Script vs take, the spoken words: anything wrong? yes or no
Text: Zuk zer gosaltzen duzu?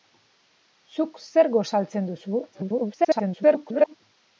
yes